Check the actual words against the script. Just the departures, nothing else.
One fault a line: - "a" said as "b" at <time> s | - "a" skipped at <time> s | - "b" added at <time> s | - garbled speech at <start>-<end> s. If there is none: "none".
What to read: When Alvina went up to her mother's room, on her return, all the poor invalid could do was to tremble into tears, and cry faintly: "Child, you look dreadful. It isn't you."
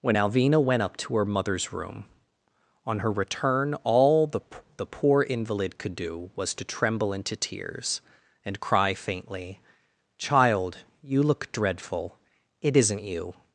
- "the" added at 4.8 s